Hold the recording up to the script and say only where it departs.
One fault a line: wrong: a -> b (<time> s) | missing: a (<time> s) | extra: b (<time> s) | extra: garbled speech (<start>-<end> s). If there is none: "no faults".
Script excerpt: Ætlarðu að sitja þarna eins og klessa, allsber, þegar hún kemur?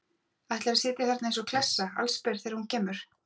no faults